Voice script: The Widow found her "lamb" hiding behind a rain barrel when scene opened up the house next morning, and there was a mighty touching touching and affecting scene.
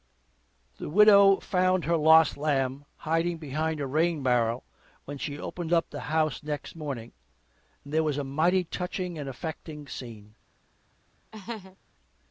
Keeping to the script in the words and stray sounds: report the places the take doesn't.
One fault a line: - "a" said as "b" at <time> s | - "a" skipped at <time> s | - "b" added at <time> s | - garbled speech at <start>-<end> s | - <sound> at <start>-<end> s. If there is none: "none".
- "lost" added at 1.9 s
- "scene" said as "she" at 5.2 s
- "touching" skipped at 9.2 s
- laugh at 11.3-11.8 s